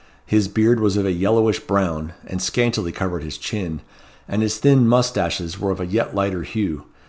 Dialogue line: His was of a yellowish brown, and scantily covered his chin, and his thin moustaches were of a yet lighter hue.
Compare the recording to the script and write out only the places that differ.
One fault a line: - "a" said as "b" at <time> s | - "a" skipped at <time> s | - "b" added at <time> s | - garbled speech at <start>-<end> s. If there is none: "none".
- "beard" added at 0.5 s